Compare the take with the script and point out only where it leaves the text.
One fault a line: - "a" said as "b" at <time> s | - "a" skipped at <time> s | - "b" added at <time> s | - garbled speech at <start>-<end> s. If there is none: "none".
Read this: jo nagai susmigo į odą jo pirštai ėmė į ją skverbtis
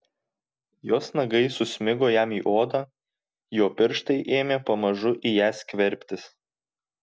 - "jo" said as "jos" at 0.9 s
- "jam" added at 2.2 s
- "pamažu" added at 4.7 s